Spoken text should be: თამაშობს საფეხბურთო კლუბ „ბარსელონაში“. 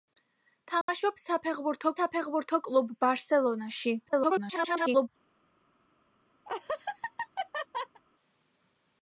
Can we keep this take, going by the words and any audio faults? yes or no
no